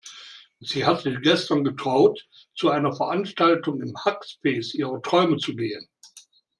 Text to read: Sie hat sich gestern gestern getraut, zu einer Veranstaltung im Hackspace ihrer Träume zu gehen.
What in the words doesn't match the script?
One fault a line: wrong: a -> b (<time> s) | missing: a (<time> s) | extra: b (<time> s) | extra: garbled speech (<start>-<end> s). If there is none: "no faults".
missing: gestern (1.6 s)